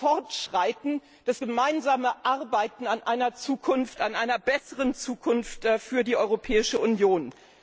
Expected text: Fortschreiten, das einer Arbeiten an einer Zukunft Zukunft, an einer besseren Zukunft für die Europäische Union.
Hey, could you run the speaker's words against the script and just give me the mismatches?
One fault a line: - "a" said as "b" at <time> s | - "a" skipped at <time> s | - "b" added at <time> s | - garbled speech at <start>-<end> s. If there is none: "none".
- "einer" said as "gemeinsame" at 1.4 s
- "Zukunft" skipped at 4.0 s